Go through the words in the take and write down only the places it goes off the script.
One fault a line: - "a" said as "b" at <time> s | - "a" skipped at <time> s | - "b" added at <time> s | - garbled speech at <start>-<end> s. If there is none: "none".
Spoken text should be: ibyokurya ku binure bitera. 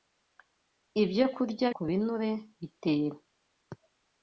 none